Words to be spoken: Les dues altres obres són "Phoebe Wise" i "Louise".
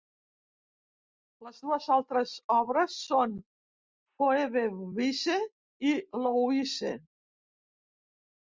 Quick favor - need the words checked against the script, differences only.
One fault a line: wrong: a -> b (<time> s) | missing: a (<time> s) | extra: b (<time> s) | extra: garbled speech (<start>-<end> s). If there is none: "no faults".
no faults